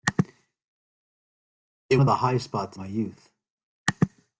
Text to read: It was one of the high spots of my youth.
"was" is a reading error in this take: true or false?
true